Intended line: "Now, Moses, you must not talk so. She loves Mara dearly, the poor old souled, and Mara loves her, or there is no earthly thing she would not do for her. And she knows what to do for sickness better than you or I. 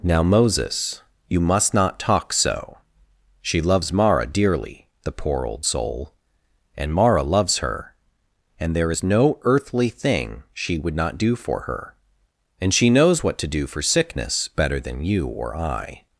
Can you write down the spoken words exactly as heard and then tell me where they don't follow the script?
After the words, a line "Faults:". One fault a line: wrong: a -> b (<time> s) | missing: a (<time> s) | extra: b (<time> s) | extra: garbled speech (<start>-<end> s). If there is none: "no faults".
"Now, Moses, you must not talk so. She loves Mara dearly, the poor old soul, and Mara loves her, and there is no earthly thing she would not do for her. And she knows what to do for sickness better than you or I.
Faults:
wrong: souled -> soul (5.6 s)
wrong: or -> and (8.6 s)